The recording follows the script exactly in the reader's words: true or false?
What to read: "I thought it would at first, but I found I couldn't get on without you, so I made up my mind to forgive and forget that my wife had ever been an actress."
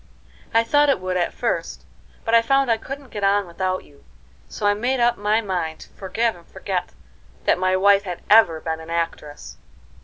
true